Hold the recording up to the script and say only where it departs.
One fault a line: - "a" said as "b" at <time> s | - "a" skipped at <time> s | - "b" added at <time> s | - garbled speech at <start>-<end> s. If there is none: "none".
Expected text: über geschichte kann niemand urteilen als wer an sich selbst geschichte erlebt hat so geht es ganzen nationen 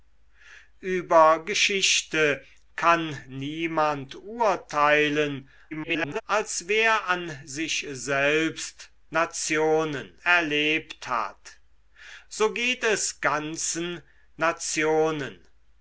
- garbled speech at 5.7-6.2 s
- "geschichte" said as "nationen" at 9.1 s